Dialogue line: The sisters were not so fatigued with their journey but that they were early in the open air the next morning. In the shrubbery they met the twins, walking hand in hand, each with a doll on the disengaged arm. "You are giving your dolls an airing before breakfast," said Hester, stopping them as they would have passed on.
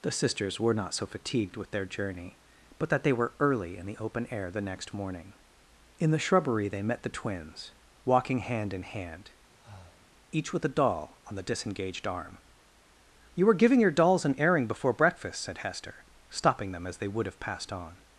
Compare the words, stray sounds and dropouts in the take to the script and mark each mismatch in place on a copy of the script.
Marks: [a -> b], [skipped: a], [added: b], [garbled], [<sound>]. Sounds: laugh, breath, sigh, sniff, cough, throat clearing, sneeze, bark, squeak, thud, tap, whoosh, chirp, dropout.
The sisters were not so fatigued with their journey but that they were early in the open air the next morning. In the shrubbery they met the twins, walking hand in hand, [breath] each with a doll on the disengaged arm. "You [are -> were] giving your dolls an airing before breakfast," said Hester, stopping them as they would have passed on.